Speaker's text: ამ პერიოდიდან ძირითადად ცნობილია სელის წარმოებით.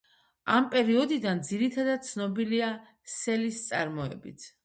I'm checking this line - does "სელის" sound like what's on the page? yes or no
yes